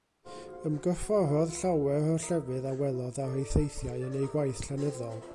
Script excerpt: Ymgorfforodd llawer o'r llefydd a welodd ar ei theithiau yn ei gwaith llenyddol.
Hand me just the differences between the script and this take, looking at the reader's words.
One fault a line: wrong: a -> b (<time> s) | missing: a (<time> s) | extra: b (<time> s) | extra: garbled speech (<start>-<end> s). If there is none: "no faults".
no faults